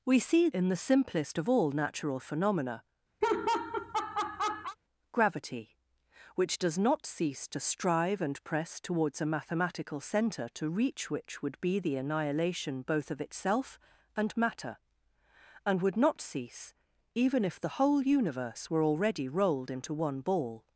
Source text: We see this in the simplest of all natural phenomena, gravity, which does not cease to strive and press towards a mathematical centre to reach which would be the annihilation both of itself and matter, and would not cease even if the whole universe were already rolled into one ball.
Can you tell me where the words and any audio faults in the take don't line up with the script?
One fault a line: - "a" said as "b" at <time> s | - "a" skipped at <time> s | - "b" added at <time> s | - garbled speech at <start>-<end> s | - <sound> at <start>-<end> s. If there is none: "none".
- "this" skipped at 0.5 s
- laugh at 3.2-4.8 s